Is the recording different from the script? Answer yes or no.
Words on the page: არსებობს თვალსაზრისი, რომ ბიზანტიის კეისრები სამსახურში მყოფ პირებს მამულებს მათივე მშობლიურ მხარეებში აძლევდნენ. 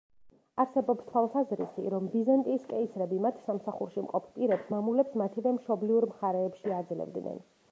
yes